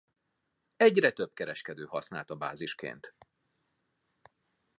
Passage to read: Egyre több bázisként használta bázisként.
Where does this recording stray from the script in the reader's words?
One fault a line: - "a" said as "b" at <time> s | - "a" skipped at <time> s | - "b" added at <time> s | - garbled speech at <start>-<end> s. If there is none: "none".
- "bázisként" said as "kereskedő" at 1.3 s